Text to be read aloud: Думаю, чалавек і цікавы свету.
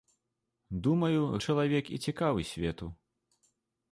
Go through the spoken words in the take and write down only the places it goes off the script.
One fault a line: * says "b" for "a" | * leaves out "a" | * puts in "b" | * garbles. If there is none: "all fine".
all fine